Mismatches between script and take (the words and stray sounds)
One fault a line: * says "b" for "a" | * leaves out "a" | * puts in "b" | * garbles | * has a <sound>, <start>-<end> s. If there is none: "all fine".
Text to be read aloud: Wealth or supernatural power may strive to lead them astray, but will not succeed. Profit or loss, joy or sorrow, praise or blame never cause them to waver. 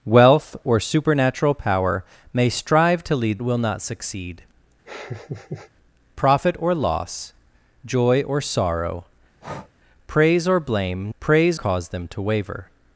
* leaves out "them astray but"
* has a laugh, 4.9-5.7 s
* has a breath, 9.4-9.7 s
* says "praise" for "never"